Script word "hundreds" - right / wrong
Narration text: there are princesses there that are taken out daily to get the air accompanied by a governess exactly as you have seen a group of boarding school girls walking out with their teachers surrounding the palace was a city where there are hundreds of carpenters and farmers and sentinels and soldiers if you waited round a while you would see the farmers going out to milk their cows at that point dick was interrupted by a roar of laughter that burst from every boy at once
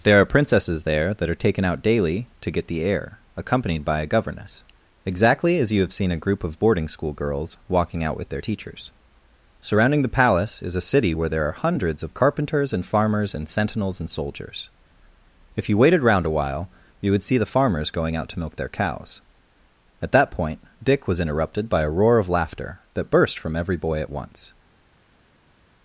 right